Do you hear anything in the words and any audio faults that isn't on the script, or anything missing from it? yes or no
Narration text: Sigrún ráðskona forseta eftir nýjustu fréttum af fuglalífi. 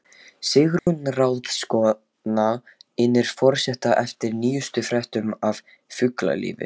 yes